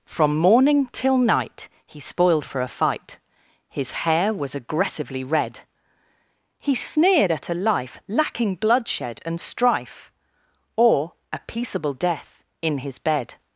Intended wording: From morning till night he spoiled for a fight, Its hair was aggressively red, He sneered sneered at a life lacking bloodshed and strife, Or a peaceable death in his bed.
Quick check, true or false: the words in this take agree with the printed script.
false